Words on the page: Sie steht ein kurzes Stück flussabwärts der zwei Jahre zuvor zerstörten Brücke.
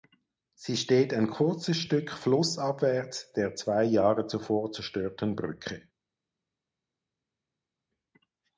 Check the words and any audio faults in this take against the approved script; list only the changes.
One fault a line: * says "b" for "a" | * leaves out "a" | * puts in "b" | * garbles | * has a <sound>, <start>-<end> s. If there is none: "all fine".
all fine